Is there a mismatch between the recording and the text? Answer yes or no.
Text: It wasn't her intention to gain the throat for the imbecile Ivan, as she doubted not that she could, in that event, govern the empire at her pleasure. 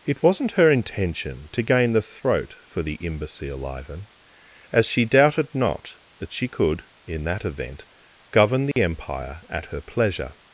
no